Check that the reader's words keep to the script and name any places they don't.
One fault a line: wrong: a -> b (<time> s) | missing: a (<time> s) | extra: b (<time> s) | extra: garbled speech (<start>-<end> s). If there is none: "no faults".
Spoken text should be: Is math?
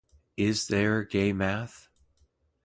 extra: there gay (0.7 s)